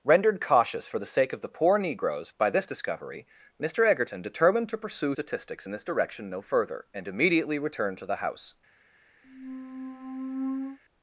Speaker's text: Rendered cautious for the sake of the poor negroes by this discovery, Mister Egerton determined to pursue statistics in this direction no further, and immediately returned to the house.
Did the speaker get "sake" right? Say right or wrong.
right